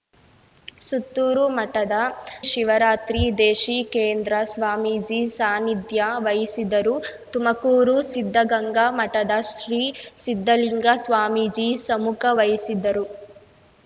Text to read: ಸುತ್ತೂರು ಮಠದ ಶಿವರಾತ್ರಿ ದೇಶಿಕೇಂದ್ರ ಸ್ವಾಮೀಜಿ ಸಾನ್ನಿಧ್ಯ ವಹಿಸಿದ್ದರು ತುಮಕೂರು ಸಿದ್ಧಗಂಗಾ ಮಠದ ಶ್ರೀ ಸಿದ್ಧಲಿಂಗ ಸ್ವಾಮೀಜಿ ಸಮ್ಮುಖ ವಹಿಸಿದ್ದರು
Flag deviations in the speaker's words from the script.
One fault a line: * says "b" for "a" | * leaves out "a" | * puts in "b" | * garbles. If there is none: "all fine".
all fine